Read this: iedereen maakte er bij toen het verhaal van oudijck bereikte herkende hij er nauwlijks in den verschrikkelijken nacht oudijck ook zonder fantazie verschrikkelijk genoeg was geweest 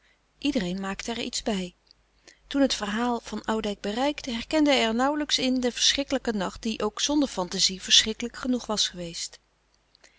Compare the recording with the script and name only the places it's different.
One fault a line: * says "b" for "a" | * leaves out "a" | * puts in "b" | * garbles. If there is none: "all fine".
* puts in "iets"
* says "die" for "oudijck"